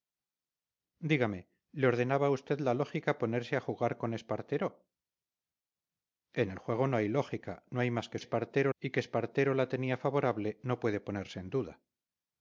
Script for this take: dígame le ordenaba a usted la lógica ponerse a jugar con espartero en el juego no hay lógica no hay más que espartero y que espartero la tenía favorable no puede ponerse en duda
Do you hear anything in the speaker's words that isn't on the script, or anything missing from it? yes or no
no